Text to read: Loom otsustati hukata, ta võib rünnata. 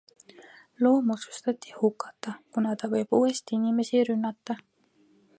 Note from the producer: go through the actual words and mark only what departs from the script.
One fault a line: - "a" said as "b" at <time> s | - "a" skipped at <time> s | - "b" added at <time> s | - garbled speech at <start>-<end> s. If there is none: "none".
- "kuna" added at 2.5 s
- "uuesti inimesi" added at 3.2 s